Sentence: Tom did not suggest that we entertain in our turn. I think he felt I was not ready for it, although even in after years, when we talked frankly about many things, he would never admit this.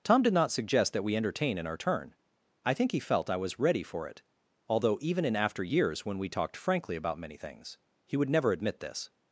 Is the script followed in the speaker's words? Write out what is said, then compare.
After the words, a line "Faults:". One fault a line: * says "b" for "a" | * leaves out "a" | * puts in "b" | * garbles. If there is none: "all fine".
Tom did not suggest that we entertain in our turn. I think he felt I was ready for it, although even in after years, when we talked frankly about many things, he would never admit this.
Faults:
* leaves out "not"